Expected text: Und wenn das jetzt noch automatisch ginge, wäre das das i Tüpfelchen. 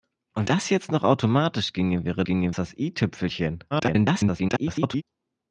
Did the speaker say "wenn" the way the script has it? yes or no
no